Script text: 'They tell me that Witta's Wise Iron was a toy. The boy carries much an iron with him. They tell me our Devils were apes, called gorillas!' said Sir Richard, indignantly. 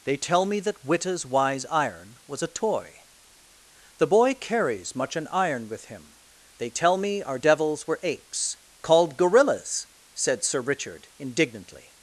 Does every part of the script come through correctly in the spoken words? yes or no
yes